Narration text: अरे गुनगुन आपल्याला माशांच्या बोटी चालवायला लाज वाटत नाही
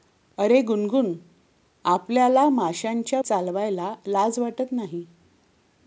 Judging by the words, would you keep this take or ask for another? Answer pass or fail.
fail